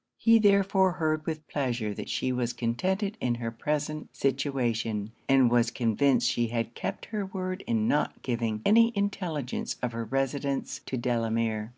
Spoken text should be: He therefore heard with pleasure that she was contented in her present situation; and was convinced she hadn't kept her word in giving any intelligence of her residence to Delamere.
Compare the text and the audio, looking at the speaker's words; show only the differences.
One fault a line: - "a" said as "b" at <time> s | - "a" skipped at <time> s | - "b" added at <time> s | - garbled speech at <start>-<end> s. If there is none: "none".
- "hadn't" said as "had" at 6.5 s
- "not" added at 7.9 s